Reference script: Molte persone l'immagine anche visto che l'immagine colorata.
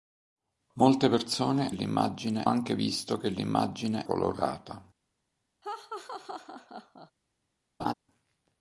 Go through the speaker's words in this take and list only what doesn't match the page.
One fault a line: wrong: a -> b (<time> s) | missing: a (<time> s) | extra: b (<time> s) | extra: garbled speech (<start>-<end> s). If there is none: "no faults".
no faults